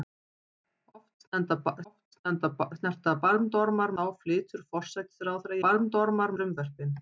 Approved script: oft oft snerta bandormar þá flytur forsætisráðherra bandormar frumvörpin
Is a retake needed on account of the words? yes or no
no